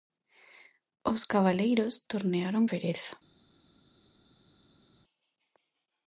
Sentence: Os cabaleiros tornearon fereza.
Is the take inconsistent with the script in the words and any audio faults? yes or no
no